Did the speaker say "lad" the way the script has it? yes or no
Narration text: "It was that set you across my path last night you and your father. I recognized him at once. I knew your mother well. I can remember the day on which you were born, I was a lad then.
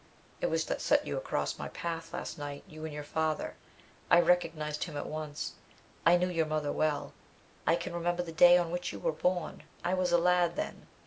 yes